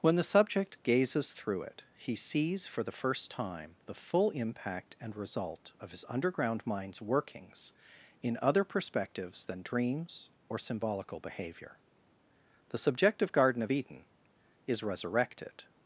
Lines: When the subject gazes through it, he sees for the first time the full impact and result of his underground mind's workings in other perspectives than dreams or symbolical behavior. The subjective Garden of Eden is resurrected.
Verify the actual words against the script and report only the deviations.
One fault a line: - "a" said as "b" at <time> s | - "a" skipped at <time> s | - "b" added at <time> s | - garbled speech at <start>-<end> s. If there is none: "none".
none